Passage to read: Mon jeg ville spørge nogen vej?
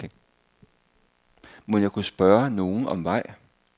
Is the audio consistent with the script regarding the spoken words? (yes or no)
no